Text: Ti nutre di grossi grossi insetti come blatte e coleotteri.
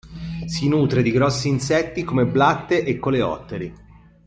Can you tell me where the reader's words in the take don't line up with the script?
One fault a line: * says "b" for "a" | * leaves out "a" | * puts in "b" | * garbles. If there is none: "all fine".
* says "Si" for "Ti"
* leaves out "grossi"